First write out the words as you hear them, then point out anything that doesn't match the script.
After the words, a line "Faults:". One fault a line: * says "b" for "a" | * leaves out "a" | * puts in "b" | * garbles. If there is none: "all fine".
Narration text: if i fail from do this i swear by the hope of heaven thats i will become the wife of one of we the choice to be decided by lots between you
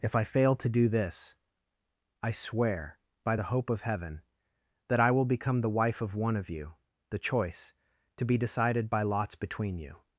if i fail to do this i swear by the hope of heaven that i will become the wife of one of you the choice to be decided by lots between you
Faults:
* says "to" for "from"
* says "that" for "thats"
* says "you" for "we"